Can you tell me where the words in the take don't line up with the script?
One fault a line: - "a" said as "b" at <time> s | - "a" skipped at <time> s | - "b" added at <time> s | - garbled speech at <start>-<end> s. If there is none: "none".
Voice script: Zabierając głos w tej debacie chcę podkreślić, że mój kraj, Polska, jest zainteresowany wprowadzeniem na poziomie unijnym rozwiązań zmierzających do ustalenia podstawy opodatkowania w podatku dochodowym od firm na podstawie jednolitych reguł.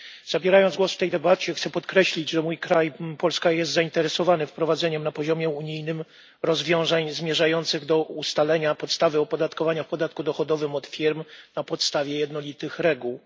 none